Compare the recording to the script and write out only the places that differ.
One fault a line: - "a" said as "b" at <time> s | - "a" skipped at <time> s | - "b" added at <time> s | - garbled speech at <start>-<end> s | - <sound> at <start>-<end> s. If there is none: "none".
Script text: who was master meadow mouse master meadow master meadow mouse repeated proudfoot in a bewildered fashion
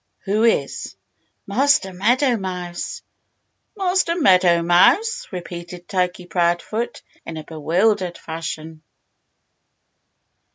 - "was" said as "is" at 0.5 s
- "master meadow" skipped at 4.6 s
- "turkey" added at 5.9 s